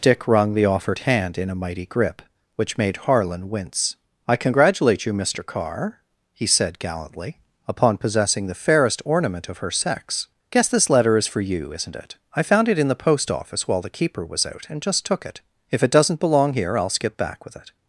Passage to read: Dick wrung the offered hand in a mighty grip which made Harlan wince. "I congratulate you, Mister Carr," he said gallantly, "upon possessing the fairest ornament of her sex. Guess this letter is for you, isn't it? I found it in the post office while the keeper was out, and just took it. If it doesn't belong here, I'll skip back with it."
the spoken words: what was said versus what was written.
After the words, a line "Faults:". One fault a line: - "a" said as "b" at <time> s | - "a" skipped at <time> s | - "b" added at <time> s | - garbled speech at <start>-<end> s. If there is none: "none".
Dick wrung the offered hand in a mighty grip which made Harlan wince. "I congratulate you, Mister Carr," he said gallantly, "upon possessing the fairest ornament of her sex. Guess this letter is for you, isn't it? I found it in the post office while the keeper was out, and just took it. If it doesn't belong here, I'll skip back with it."
Faults:
none